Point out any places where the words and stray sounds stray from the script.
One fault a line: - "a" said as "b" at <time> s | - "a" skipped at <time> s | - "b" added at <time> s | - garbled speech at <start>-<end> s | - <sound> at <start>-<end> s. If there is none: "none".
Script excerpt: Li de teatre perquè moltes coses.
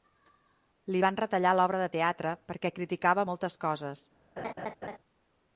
- "van retallar l'obra" added at 1.0 s
- "criticava" added at 2.8 s
- laugh at 4.4-5.0 s